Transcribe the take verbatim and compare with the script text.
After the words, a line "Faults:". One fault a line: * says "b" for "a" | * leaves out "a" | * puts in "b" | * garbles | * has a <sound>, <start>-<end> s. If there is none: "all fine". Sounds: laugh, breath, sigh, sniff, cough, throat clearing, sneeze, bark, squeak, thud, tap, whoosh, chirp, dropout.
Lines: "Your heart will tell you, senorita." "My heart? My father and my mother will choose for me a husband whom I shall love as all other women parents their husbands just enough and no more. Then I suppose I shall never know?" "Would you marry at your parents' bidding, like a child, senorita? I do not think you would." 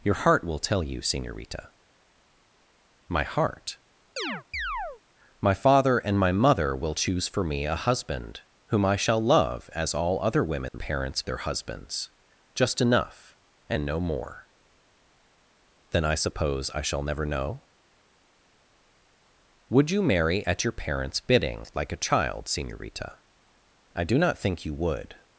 "Your heart will tell you, senorita." "My heart? My father and my mother will choose for me a husband whom I shall love as all other women parents their husbands just enough and no more. Then I suppose I shall never know?" "Would you marry at your parents' bidding, like a child, senorita? I do not think you would."
Faults:
* has a chirp, 4.2-5.0 s
* has a dropout, 10.7-10.7 s